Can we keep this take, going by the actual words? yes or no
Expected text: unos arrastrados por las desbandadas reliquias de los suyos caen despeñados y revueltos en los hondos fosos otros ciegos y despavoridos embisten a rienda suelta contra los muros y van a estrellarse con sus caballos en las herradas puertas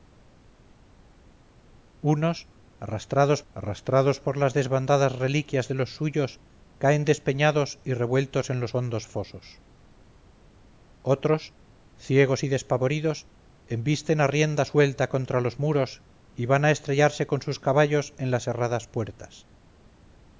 no